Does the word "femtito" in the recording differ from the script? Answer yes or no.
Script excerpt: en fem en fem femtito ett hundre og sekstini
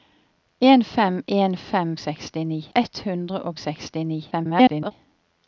yes